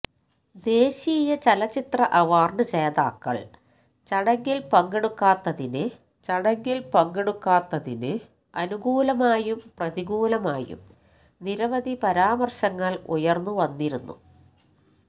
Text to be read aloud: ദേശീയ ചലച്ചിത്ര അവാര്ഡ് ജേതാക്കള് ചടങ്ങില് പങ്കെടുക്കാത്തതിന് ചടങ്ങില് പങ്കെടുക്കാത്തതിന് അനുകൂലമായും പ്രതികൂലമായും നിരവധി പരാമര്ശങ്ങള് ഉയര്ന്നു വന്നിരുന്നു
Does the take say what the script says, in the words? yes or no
yes